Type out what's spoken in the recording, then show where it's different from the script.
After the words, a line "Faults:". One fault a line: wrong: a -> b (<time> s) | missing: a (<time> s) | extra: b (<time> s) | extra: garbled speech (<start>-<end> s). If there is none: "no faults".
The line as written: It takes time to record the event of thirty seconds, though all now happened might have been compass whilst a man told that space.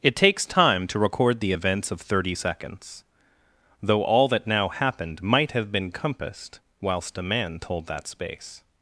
It takes time to record the events of thirty seconds, though all that now happened might have been compassed whilst a man told that space.
Faults:
wrong: event -> events (1.5 s)
extra: that (4.3 s)
wrong: compass -> compassed (5.9 s)